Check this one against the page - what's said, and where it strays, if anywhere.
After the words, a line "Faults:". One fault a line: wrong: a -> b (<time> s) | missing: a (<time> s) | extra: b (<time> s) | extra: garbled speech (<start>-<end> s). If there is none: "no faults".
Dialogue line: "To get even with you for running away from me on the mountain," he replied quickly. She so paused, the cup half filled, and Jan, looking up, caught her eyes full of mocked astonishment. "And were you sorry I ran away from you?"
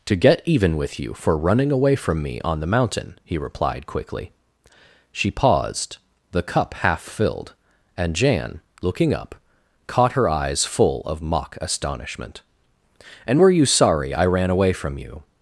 "To get even with you for running away from me on the mountain," he replied quickly. She paused, the cup half filled, and Jan, looking up, caught her eyes full of mock astonishment. "And were you sorry I ran away from you?"
Faults:
missing: so (5.3 s)
wrong: mocked -> mock (11.2 s)